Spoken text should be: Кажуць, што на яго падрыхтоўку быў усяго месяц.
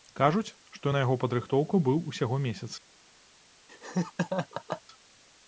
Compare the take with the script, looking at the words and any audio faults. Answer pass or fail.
fail